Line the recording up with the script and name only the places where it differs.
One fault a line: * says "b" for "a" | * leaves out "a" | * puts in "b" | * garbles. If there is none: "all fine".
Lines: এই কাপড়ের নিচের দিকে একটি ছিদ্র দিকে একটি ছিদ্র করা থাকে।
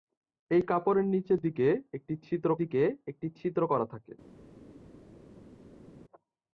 all fine